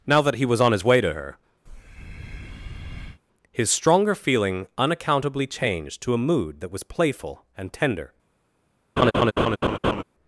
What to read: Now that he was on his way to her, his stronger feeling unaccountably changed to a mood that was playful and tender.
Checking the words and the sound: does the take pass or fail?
fail